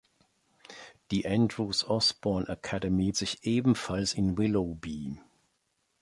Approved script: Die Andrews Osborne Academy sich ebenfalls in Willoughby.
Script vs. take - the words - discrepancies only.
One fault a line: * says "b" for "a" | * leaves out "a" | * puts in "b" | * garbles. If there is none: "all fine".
all fine